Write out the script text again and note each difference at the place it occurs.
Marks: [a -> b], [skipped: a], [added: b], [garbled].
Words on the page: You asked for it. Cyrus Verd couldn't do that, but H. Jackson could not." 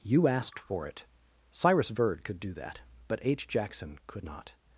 You asked for it. Cyrus Verd [couldn't -> could] do that, but H. Jackson could not."